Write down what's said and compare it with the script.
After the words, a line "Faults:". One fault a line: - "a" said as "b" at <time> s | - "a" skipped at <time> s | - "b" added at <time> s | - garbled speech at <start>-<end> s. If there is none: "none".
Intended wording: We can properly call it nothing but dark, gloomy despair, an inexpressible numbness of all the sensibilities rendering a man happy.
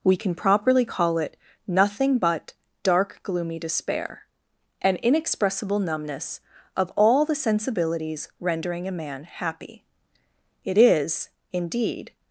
We can properly call it nothing but dark, gloomy despair, an inexpressible numbness of all the sensibilities rendering a man happy. It is, indeed
Faults:
- "It is indeed" added at 10.6 s